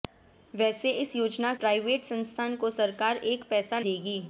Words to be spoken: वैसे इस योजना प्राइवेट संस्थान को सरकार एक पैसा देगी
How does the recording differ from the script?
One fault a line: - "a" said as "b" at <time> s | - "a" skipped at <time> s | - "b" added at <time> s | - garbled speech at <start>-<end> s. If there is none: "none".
none